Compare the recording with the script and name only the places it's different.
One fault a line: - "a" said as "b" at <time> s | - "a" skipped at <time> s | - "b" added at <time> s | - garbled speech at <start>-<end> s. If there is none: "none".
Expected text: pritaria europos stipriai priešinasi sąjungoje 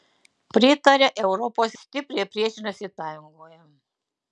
none